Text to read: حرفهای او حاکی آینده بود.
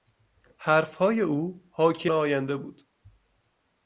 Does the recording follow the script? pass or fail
pass